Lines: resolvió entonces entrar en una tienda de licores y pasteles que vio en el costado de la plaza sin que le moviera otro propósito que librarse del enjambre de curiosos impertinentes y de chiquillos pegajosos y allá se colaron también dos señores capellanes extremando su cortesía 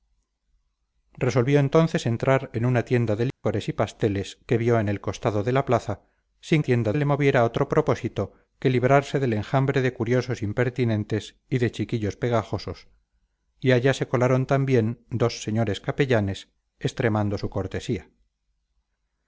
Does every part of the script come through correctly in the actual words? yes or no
no